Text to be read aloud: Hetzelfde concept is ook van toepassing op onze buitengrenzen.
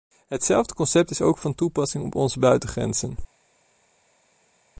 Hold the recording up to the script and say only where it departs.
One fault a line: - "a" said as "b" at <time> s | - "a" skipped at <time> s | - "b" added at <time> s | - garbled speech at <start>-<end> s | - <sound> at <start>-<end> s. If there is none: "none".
none